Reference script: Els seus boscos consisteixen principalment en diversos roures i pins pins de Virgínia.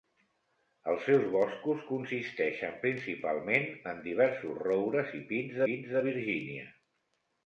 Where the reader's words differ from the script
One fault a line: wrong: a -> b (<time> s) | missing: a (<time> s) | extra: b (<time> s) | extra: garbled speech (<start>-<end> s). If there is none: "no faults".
no faults